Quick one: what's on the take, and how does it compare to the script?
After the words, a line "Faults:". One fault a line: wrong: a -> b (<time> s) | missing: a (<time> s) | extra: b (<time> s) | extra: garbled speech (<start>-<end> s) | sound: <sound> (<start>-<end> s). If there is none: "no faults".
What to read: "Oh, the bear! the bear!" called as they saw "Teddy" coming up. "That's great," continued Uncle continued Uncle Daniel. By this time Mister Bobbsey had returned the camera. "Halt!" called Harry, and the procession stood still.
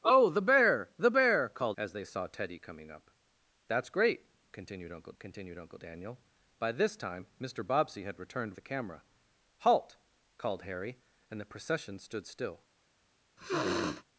"Oh, the bear! the bear!" called as they saw "Teddy" coming up. "That's great," continued Uncle continued Uncle Daniel. By this time Mister Bobbsey had returned the camera. "Halt!" called Harry, and the procession stood still.
Faults:
sound: sniff (13.4-14.0 s)